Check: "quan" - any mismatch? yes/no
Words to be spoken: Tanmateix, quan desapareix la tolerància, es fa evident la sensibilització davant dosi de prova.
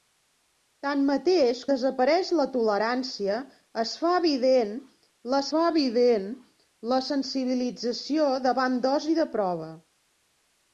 yes